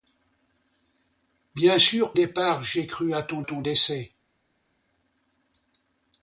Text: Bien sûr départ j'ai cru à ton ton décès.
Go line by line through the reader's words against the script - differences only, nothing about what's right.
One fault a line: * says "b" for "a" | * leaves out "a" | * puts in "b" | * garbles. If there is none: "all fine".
all fine